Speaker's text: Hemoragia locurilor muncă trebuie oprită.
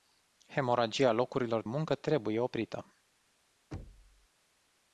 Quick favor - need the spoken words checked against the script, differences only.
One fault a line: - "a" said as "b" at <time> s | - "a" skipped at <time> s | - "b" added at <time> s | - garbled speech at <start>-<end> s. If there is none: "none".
none